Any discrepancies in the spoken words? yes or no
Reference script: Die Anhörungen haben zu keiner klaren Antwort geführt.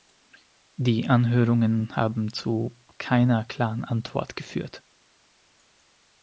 no